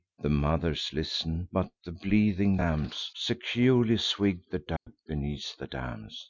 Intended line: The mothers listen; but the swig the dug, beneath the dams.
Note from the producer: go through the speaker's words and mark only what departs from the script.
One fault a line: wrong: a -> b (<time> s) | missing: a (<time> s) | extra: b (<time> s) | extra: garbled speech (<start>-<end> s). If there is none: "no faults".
extra: bleating lambs Securely (1.9 s)